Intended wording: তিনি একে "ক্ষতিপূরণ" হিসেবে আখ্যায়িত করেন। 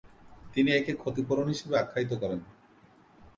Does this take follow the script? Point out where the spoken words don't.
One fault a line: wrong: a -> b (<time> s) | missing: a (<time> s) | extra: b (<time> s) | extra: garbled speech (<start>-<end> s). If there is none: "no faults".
no faults